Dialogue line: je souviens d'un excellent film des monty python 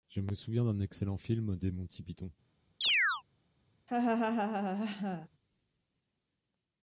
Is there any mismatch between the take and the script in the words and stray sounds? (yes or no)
yes